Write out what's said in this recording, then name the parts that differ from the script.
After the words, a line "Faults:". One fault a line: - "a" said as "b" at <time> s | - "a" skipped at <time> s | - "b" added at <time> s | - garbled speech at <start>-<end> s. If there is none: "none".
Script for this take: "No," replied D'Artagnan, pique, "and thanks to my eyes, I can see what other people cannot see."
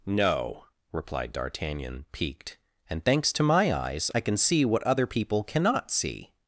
"No," replied D'Artagnan, piqued, "and thanks to my eyes, I can see what other people cannot see."
Faults:
- "pique" said as "piqued" at 2.1 s